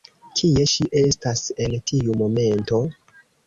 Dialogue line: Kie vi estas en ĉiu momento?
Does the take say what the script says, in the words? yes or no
no